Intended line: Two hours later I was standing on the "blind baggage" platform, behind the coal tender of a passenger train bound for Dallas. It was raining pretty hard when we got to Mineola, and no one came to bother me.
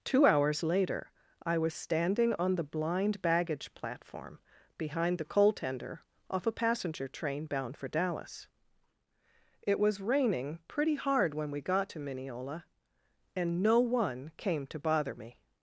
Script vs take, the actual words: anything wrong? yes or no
yes